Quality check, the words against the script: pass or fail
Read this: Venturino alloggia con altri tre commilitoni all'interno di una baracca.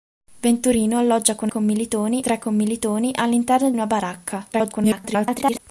fail